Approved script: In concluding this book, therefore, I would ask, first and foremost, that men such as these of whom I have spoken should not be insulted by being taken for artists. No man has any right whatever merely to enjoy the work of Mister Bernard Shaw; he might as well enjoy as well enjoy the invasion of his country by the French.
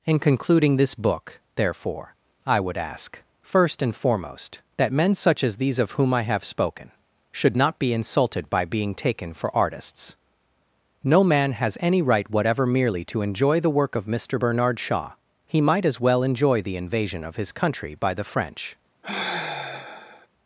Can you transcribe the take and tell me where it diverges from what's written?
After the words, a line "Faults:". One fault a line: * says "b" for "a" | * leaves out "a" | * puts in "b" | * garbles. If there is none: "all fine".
In concluding this book, therefore, I would ask, first and foremost, that men such as these of whom I have spoken should not be insulted by being taken for artists. No man has any right whatever merely to enjoy the work of Mister Bernard Shaw; he might as well enjoy the invasion of his country by the French.
Faults:
* leaves out "as well enjoy"